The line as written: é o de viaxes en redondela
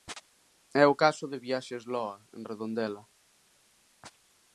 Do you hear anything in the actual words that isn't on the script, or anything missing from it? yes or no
yes